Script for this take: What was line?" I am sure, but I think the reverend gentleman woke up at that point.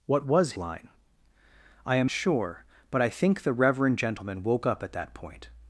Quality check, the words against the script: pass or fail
pass